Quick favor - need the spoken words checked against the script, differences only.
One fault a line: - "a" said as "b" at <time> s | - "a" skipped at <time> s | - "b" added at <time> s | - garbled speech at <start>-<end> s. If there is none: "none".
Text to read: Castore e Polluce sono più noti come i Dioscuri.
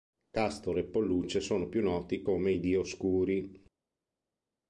none